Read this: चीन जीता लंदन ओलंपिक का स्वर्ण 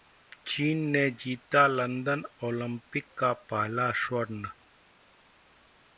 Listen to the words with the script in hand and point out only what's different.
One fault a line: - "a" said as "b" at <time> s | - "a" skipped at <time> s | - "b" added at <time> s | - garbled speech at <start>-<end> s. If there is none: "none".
- "ने" added at 0.9 s
- "पहला" added at 3.5 s